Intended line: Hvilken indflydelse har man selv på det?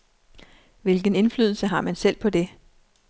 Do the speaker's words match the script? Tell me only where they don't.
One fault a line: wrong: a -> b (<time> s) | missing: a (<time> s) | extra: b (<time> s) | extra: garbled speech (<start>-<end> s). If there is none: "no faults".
no faults